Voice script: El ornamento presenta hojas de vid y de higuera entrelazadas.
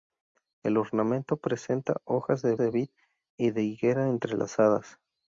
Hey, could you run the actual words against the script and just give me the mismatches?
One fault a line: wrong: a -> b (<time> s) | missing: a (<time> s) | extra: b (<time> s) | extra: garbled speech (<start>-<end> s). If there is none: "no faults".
extra: de (2.6 s)